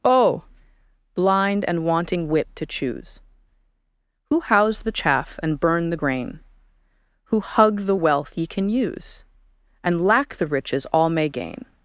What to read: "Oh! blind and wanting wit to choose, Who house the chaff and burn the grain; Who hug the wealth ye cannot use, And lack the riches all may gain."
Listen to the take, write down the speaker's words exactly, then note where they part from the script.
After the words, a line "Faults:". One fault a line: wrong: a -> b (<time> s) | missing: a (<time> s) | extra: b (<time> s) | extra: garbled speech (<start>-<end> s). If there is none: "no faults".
"Oh! blind and wanting wit to choose, Who house the chaff and burn the grain; Who hug the wealth ye can use, And lack the riches all may gain."
Faults:
wrong: cannot -> can (8.5 s)